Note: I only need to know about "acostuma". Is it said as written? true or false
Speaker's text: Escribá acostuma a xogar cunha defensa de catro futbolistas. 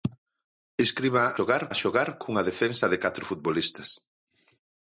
false